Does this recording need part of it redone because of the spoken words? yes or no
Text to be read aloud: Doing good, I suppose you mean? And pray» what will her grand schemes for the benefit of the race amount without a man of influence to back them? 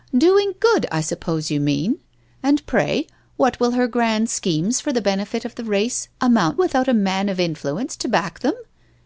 no